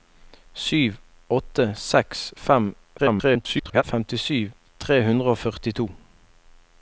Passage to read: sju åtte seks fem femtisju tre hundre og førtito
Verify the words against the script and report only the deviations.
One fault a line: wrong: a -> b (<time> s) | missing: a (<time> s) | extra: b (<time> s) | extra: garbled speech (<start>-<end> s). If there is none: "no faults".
extra: garbled speech (3.0-3.8 s)